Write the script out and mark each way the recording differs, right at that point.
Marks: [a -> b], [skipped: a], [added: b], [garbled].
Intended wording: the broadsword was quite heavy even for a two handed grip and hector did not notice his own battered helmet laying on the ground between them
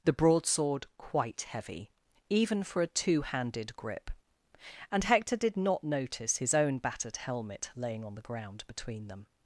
the broadsword [skipped: was] quite heavy even for a two handed grip and hector did not notice his own battered helmet laying on the ground between them